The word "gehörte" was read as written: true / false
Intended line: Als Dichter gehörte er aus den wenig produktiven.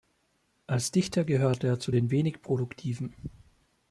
true